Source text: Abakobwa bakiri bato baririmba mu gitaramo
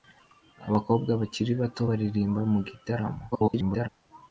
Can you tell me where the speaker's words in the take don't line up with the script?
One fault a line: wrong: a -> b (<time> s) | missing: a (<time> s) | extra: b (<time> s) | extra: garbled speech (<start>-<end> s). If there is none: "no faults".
extra: garbled speech (3.3-3.9 s)